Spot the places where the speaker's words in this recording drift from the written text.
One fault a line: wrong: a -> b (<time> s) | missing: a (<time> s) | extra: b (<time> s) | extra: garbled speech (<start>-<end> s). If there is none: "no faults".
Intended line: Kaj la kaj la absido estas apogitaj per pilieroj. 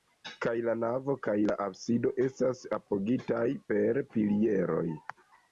extra: navo (0.8 s)